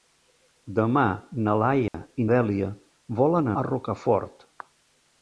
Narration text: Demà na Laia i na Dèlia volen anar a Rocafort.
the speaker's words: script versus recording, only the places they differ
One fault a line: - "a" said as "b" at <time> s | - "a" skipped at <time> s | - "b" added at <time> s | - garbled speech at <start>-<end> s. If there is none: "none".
- "na" skipped at 2.2 s
- "anar" skipped at 3.5 s